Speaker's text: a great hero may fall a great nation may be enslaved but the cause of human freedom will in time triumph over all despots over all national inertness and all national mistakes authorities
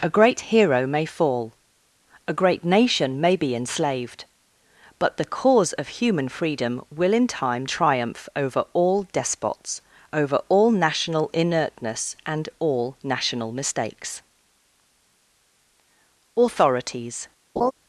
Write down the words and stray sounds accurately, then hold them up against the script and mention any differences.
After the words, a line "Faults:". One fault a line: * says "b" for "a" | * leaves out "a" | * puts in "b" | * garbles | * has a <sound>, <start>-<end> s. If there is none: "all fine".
a great hero may fall a great nation may be enslaved but the cause of human freedom will in time triumph over all despots over all national inertness and all national mistakes authorities
Faults:
* has a laugh, 17.6-17.7 s